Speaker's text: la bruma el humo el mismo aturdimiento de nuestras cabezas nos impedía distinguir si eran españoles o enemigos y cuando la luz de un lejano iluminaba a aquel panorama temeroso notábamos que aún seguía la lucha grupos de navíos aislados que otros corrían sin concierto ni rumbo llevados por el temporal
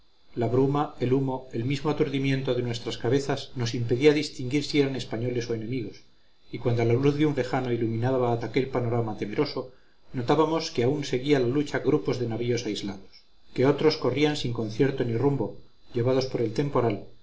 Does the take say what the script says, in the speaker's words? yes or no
yes